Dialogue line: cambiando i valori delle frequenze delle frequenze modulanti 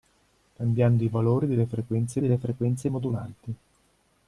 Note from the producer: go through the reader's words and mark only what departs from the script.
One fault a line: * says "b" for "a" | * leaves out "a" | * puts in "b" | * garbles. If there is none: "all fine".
all fine